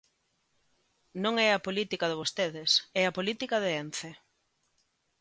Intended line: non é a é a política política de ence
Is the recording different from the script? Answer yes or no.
yes